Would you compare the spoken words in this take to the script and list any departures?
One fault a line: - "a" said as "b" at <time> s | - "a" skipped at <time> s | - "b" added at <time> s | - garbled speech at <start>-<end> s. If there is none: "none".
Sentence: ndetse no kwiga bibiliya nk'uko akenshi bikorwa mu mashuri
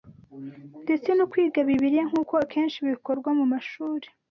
none